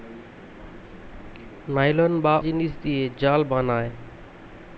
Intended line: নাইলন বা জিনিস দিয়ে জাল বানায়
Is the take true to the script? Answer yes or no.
yes